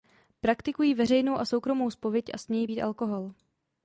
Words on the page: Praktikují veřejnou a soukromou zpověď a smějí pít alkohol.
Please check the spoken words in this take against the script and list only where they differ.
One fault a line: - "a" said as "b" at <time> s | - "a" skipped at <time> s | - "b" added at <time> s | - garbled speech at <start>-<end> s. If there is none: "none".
none